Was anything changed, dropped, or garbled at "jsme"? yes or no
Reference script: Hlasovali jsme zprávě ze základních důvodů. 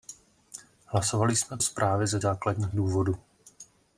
no